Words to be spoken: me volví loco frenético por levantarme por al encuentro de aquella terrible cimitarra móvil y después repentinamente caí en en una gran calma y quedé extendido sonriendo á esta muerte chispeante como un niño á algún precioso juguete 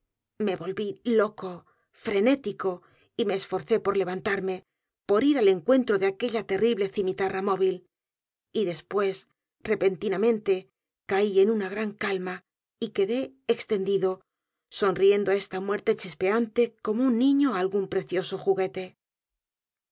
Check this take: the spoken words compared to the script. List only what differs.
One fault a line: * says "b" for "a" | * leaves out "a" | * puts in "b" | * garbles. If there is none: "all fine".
* puts in "y me esforcé"
* puts in "ir"
* leaves out "en"